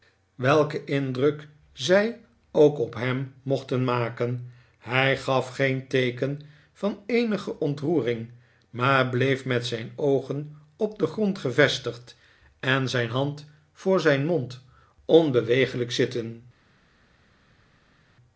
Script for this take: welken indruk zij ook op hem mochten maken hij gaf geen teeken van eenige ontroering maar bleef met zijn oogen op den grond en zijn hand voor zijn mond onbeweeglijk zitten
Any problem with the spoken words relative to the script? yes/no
yes